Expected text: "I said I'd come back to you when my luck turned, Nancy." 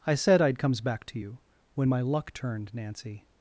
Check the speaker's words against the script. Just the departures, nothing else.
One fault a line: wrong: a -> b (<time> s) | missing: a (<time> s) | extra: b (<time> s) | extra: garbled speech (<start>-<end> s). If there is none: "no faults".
wrong: come -> comes (0.6 s)